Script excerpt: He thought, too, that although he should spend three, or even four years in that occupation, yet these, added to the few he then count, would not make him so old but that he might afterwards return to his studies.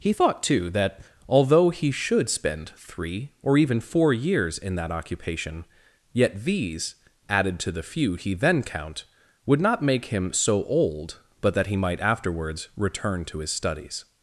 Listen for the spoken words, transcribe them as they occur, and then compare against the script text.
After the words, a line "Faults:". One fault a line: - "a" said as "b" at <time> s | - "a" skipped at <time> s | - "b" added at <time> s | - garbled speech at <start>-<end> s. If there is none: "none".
He thought, too, that although he should spend three, or even four years in that occupation, yet these, added to the few he then count, would not make him so old but that he might afterwards return to his studies.
Faults:
none